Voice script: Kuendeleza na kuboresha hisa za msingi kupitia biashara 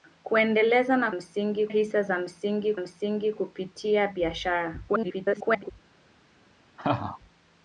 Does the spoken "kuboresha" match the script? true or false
false